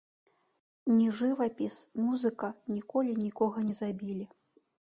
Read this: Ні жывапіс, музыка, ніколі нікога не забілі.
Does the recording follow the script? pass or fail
pass